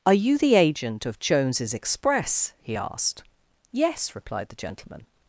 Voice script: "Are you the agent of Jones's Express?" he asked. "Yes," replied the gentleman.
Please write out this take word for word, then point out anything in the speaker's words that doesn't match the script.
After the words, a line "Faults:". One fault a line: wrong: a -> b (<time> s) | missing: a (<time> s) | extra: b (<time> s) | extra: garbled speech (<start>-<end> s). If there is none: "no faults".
"Are you the agent of Jones's Express?" he asked. "Yes," replied the gentleman.
Faults:
no faults